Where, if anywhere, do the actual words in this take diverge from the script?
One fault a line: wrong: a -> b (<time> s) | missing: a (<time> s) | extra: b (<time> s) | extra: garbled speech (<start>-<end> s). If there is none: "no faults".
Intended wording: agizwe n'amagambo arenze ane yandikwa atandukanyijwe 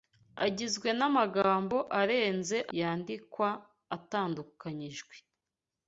missing: ane (2.6 s)